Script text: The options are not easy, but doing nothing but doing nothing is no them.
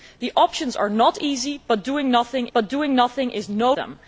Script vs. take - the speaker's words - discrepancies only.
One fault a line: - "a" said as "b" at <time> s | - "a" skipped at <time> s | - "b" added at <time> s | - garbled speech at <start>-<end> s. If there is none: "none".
none